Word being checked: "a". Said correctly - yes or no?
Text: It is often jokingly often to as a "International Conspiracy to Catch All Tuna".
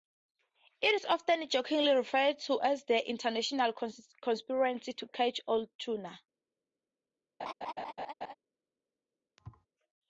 no